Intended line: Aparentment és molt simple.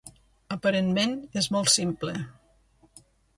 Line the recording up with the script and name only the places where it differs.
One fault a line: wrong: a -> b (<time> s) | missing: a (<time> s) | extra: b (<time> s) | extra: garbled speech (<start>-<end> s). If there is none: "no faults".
no faults